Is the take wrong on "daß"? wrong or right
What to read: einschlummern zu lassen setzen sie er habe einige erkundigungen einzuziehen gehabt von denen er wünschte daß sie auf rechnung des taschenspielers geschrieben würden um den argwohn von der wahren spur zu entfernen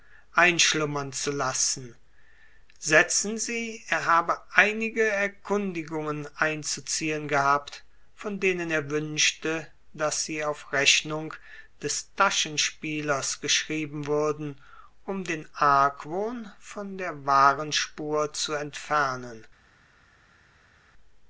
right